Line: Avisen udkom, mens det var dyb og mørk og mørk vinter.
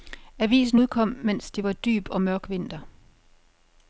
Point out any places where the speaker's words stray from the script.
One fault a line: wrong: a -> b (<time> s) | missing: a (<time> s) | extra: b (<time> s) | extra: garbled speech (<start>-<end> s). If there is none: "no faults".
missing: og mørk (2.5 s)